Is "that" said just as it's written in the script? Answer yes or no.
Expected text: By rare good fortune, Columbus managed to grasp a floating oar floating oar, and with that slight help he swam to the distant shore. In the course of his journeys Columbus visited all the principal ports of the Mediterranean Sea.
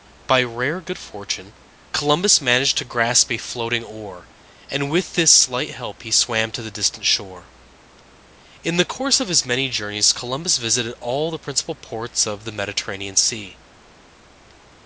no